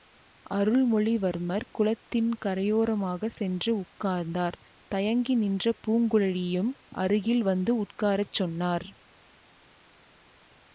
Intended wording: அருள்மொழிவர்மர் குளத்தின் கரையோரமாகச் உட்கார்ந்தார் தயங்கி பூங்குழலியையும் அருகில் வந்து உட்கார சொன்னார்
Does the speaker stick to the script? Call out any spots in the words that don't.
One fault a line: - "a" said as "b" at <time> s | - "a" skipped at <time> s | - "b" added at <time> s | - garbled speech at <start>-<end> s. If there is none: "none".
- "சென்று" added at 3.3 s
- "நின்ற" added at 5.3 s